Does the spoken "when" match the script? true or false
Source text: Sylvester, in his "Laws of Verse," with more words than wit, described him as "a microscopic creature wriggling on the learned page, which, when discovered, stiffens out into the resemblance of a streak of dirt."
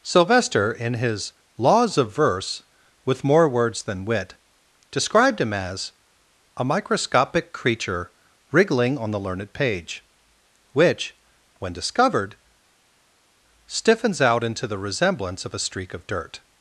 true